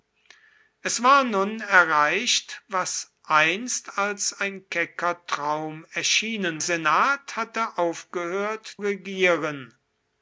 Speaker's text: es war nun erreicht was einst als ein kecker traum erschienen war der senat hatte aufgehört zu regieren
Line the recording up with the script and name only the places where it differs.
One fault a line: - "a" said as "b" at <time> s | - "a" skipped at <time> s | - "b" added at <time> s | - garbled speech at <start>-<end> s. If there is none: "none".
- "war der" skipped at 6.6 s
- "zu" skipped at 8.7 s